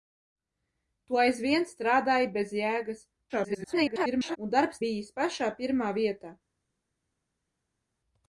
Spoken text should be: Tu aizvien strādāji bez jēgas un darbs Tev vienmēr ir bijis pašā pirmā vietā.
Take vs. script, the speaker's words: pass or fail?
fail